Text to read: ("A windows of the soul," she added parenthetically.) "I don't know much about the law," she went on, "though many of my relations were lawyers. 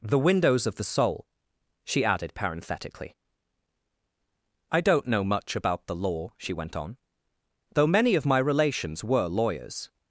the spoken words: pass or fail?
fail